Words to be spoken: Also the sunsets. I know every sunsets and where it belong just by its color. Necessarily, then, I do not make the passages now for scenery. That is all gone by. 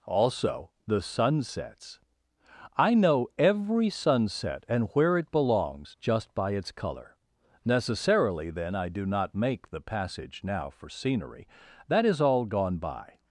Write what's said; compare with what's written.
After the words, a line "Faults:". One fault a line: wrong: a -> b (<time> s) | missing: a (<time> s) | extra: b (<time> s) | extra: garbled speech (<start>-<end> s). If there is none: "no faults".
Also the sunsets. I know every sunset and where it belongs just by its color. Necessarily, then, I do not make the passage now for scenery. That is all gone by.
Faults:
wrong: sunsets -> sunset (3.9 s)
wrong: belong -> belongs (5.3 s)
wrong: passages -> passage (9.8 s)